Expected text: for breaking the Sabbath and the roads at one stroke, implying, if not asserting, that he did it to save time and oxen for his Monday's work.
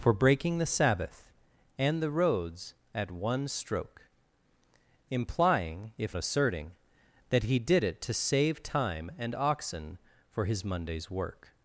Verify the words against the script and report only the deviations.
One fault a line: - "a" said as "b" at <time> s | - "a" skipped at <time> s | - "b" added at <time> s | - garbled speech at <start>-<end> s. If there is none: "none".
- "not" skipped at 6.2 s